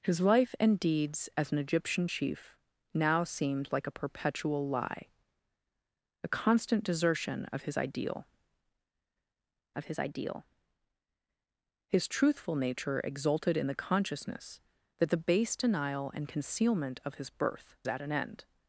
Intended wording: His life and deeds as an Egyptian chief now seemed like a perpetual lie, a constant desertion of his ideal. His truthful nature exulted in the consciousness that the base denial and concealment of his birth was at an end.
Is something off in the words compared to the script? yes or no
yes